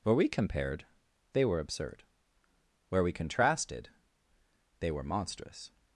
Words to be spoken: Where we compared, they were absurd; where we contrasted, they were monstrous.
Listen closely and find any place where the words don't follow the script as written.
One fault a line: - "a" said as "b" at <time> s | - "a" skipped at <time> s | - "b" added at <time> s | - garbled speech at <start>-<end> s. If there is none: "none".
none